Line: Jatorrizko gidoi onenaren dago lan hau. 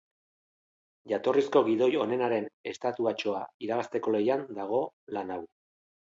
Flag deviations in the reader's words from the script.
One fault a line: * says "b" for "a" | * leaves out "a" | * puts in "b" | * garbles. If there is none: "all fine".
* puts in "estatuatxoa irabazteko lehian"